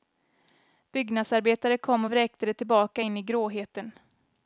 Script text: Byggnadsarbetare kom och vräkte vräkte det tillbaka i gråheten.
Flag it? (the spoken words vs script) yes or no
yes